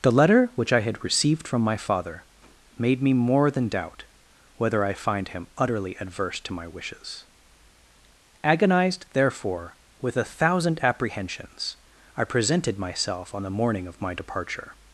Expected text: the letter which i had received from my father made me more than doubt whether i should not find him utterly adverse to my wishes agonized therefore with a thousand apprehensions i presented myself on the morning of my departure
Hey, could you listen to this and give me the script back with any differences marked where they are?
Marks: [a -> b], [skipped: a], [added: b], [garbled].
the letter which i had received from my father made me more than doubt whether i [skipped: should not] find him utterly adverse to my wishes agonized therefore with a thousand apprehensions i presented myself on the morning of my departure